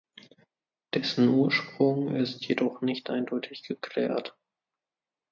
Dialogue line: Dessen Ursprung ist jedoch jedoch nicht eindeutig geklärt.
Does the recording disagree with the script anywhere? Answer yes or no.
yes